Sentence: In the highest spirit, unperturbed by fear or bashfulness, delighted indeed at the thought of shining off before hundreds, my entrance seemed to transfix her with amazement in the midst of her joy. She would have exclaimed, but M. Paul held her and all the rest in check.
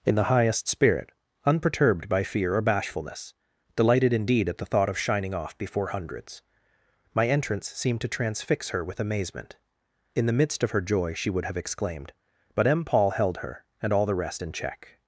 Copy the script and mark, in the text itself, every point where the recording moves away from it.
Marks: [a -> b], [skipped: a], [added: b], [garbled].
In the highest spirit, unperturbed by fear or bashfulness, delighted indeed at the thought of shining off before hundreds, my entrance seemed to transfix her with amazement in the midst of her joy. She would have exclaimed, but M. Paul held her and all the rest in check.